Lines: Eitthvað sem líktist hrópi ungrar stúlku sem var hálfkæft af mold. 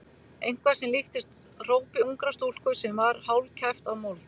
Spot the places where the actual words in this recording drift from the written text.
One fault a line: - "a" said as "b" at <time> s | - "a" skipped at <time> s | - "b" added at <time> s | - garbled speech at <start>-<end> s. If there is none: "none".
none